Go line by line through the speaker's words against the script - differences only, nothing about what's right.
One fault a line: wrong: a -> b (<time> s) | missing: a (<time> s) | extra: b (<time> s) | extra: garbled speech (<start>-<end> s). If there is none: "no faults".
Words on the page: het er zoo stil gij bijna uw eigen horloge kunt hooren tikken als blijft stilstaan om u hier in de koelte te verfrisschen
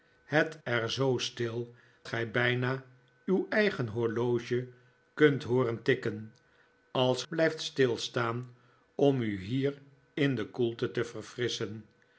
no faults